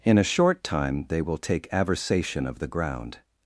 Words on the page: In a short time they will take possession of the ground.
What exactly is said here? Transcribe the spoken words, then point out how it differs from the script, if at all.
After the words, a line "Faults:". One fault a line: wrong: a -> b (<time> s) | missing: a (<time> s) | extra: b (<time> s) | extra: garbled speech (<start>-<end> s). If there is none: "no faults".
In a short time they will take aversation of the ground.
Faults:
wrong: possession -> aversation (1.7 s)